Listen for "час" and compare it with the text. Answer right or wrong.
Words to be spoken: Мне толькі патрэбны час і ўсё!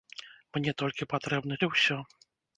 wrong